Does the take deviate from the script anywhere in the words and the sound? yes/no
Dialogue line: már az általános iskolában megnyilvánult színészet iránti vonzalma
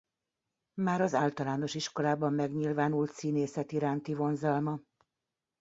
no